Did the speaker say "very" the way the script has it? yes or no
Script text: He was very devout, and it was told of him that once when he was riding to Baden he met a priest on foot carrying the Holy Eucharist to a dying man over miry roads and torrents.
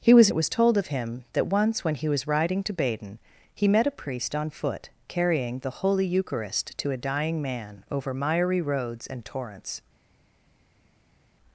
no